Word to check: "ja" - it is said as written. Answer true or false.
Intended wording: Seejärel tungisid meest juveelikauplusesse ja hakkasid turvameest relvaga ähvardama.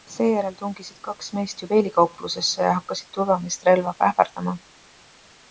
true